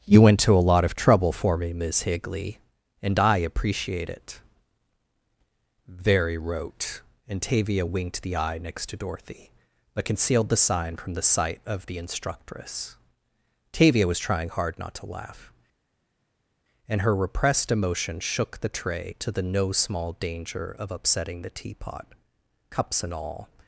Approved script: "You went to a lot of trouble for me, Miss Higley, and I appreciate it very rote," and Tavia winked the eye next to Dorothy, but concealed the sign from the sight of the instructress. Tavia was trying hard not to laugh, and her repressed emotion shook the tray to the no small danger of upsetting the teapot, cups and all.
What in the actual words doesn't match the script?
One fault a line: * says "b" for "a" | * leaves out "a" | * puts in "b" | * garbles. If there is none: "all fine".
all fine